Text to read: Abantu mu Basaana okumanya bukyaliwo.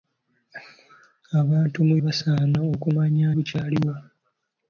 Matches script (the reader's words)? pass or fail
pass